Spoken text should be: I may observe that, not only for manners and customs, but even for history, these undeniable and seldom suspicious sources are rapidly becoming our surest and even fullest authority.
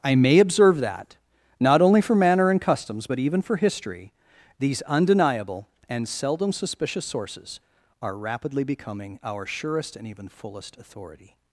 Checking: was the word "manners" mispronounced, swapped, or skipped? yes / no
yes